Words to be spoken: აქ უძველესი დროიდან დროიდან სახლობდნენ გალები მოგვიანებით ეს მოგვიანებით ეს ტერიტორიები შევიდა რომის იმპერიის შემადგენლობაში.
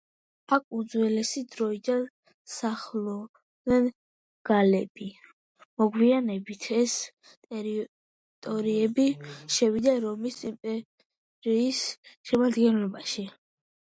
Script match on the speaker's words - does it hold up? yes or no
no